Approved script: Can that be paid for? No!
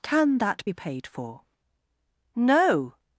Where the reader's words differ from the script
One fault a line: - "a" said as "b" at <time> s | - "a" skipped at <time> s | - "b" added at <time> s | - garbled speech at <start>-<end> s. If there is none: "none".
none